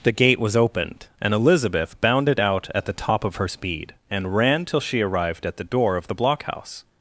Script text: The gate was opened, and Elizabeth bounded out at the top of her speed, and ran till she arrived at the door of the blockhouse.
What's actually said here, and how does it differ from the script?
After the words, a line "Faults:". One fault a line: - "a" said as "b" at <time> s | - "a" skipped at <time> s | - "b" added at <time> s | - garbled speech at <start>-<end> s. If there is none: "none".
The gate was opened, and Elizabeth bounded out at the top of her speed, and ran till she arrived at the door of the blockhouse.
Faults:
none